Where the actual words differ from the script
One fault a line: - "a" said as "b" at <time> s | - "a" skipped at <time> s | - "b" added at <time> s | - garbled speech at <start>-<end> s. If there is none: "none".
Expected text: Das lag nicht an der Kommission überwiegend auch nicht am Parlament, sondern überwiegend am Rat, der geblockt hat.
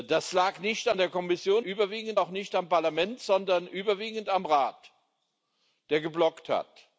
none